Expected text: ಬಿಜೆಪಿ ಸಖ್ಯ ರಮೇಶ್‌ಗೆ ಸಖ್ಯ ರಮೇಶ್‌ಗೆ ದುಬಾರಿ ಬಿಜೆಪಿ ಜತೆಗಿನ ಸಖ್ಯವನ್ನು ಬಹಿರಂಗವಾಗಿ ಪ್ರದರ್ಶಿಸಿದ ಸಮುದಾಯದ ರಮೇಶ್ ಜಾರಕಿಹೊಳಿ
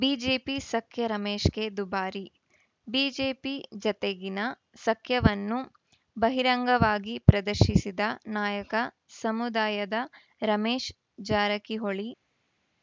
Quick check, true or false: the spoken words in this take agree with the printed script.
false